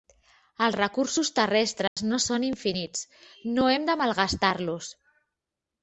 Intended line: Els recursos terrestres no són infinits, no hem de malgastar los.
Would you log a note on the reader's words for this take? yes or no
no